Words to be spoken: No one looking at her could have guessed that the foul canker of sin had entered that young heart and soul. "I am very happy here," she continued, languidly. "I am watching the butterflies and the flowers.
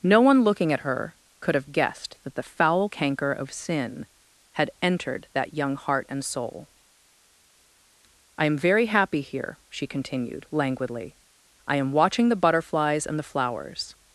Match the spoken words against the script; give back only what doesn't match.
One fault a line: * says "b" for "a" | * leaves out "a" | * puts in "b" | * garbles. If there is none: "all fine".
all fine